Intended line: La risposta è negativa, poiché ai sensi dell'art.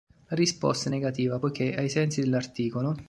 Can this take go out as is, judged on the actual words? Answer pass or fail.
pass